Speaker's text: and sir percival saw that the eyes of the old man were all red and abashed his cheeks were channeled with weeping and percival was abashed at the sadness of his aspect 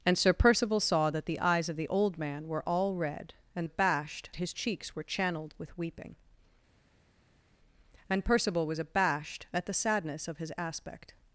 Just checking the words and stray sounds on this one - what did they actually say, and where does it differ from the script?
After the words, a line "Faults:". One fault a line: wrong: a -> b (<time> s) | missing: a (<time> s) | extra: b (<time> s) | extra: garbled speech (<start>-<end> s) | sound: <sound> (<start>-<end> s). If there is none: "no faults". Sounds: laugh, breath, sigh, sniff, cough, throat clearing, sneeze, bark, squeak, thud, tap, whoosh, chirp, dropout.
and sir percival saw that the eyes of the old man were all red and abashed his cheeks were channeled with weeping and percival was abashed at the sadness of his aspect
Faults:
no faults